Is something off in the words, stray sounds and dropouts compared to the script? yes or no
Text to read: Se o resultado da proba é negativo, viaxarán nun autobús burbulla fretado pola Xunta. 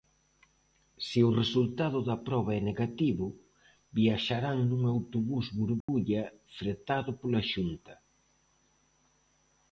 yes